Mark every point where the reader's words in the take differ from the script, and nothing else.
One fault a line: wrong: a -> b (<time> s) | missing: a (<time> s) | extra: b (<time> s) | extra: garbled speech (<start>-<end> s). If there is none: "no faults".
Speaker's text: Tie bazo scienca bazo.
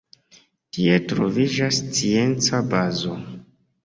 wrong: bazo -> troviĝas (1.1 s)